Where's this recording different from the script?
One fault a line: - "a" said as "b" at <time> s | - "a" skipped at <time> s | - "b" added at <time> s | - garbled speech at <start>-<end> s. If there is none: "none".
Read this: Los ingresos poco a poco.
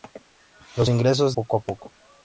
none